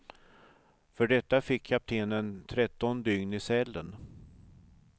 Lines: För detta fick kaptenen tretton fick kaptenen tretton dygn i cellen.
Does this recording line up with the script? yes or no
no